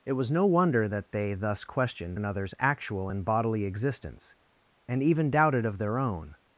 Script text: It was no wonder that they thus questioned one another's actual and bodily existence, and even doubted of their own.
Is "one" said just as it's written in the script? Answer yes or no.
no